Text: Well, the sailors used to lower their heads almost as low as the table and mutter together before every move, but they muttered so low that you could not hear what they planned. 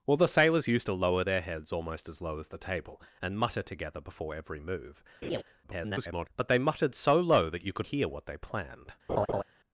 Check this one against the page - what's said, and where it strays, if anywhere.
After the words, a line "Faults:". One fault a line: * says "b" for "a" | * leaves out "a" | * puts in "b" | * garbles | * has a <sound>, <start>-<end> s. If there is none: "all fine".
Well, the sailors used to lower their heads almost as low as the table and mutter together before every move, [garbled] but they muttered so low that you could hear what they planned.
Faults:
* has a laugh, 5.2-5.4 s
* garbles
* leaves out "not"
* has a laugh, 9.1-9.4 s